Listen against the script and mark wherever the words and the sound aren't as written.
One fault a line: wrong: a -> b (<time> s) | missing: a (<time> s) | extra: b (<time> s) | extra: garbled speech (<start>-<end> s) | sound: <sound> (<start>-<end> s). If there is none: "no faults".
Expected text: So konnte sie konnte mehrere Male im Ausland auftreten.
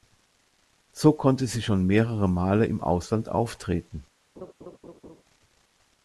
wrong: konnte -> schon (1.6 s)
sound: laugh (4.4-5.2 s)